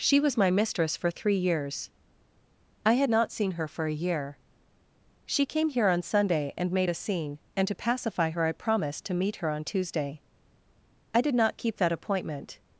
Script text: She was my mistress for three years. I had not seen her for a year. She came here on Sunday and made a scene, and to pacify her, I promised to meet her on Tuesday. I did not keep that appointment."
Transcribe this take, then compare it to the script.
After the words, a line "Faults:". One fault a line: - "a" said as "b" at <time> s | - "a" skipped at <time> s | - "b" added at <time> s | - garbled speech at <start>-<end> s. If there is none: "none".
She was my mistress for three years. I had not seen her for a year. She came here on Sunday and made a scene, and to pacify her, I promised to meet her on Tuesday. I did not keep that appointment."
Faults:
none